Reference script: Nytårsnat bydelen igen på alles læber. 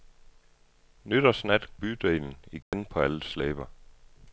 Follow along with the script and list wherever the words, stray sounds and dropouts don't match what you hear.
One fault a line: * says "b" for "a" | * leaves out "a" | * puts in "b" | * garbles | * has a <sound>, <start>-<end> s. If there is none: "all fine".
* has a dropout, 2.6-2.7 s